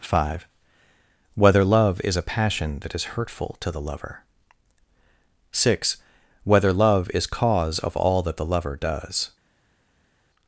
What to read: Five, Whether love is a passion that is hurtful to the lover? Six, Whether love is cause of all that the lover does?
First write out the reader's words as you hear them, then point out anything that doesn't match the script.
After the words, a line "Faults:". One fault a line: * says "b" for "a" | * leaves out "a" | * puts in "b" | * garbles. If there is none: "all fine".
Five, Whether love is a passion that is hurtful to the lover? Six, Whether love is cause of all that the lover does?
Faults:
all fine